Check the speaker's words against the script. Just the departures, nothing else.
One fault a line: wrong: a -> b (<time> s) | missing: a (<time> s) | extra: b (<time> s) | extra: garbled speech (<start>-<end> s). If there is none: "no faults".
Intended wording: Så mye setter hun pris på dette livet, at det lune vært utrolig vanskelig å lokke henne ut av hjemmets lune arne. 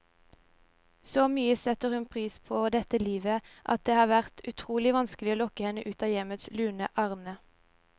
wrong: lune -> har (4.0 s)